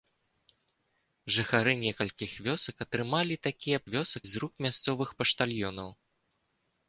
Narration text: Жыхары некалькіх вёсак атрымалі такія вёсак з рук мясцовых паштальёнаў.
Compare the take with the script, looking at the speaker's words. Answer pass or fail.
pass